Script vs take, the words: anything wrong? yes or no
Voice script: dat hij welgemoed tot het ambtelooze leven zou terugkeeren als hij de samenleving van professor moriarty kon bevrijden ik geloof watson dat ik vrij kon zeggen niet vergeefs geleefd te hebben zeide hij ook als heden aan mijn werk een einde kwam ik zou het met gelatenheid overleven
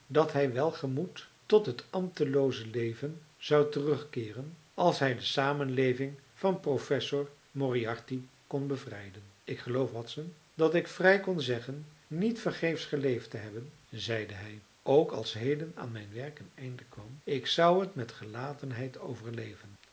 no